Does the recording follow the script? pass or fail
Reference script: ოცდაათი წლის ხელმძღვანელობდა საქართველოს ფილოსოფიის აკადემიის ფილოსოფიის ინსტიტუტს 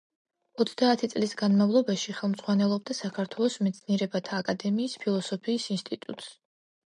fail